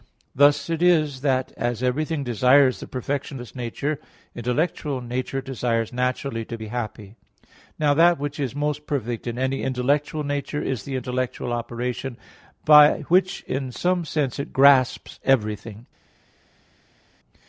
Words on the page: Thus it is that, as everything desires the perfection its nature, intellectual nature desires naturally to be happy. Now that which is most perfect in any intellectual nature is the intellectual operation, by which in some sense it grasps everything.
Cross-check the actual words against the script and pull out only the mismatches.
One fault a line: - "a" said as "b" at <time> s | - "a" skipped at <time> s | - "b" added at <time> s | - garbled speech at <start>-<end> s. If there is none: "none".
none